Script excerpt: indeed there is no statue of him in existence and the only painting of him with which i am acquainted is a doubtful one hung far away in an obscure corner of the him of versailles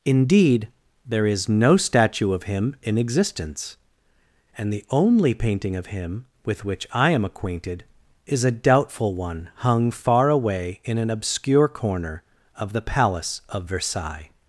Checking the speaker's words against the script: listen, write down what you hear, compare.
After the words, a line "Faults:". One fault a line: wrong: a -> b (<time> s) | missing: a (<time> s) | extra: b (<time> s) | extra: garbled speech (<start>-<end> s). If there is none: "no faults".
indeed there is no statue of him in existence and the only painting of him with which i am acquainted is a doubtful one hung far away in an obscure corner of the palace of versailles
Faults:
wrong: him -> palace (12.8 s)